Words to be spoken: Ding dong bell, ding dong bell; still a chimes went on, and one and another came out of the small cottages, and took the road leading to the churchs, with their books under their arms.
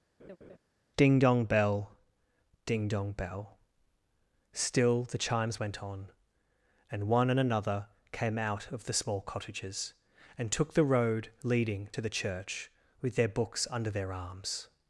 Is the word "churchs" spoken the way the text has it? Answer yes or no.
no